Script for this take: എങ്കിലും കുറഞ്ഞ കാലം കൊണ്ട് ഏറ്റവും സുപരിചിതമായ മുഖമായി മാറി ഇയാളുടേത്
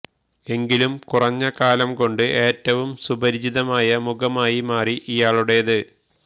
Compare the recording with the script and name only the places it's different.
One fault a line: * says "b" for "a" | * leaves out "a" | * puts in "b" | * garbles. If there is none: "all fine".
all fine